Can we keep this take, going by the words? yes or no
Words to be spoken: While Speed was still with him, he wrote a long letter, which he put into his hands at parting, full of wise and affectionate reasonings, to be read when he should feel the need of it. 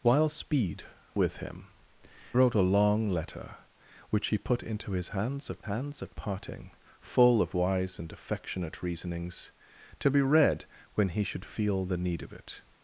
no